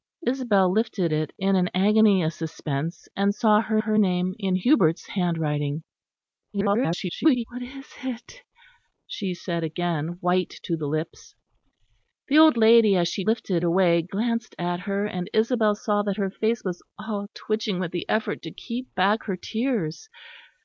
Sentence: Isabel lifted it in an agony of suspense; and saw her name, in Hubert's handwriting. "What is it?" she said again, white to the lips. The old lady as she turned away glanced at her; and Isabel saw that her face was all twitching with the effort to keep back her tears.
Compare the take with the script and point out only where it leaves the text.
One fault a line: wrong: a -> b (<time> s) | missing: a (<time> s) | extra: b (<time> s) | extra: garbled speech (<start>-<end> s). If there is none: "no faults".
extra: her (3.8 s)
extra: garbled speech (6.5-7.4 s)
wrong: turned -> lifted (13.2 s)